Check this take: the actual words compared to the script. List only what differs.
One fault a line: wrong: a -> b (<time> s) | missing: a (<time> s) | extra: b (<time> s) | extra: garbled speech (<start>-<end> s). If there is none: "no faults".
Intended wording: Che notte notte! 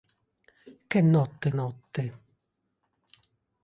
no faults